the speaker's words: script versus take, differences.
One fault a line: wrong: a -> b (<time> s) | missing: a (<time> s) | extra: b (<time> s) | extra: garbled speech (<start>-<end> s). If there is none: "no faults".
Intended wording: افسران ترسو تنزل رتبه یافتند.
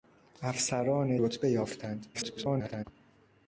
missing: ترسو تنزل (1.2 s)
extra: garbled speech (2.1-2.9 s)